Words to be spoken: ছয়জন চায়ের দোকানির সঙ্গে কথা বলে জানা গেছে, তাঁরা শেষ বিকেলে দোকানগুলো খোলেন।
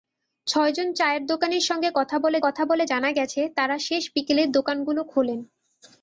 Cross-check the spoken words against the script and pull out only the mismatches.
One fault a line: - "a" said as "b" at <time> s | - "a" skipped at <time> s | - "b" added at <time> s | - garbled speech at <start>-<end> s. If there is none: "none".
- "কথা বলে" added at 2.4 s